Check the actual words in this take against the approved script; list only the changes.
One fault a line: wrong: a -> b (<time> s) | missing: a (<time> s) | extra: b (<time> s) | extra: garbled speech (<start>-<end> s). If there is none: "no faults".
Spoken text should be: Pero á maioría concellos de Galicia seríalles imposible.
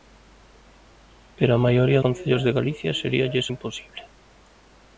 no faults